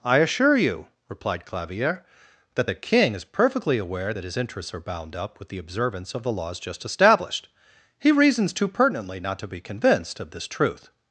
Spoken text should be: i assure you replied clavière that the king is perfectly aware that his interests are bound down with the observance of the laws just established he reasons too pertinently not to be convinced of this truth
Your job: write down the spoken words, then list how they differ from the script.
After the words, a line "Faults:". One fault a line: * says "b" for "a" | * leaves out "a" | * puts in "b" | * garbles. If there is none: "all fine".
i assure you replied clavière that the king is perfectly aware that his interests are bound up with the observance of the laws just established he reasons too pertinently not to be convinced of this truth
Faults:
* says "up" for "down"